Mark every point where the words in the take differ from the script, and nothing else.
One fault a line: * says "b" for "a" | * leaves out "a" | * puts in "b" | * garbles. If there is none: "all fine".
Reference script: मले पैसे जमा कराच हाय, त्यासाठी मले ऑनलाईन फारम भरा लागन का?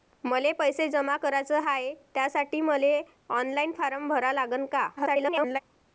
* garbles